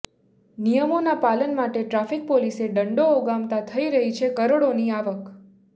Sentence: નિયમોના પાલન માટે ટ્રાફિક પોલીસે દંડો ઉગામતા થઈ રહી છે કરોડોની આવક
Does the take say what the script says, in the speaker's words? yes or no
yes